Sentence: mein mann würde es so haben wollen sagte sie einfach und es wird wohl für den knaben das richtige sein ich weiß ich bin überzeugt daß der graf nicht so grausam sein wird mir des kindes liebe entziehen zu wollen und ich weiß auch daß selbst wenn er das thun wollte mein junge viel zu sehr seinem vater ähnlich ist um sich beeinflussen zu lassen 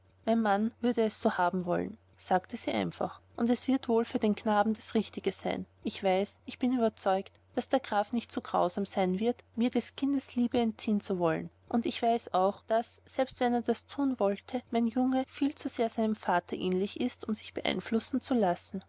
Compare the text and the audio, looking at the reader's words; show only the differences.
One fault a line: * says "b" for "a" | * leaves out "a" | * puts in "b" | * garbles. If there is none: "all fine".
all fine